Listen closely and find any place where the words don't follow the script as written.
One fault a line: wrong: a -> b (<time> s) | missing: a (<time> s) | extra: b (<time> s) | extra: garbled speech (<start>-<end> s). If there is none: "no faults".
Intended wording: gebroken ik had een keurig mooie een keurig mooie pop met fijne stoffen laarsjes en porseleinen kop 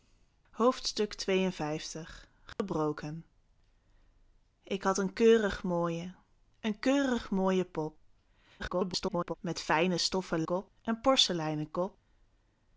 extra: garbled speech (8.6-9.3 s)
wrong: laarsjes -> kop (10.4 s)